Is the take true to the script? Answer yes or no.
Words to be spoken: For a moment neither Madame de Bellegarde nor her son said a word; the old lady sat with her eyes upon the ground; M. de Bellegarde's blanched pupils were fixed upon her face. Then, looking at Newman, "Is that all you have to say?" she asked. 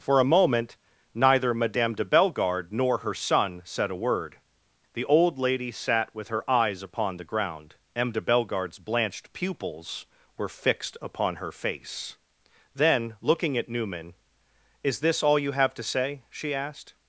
no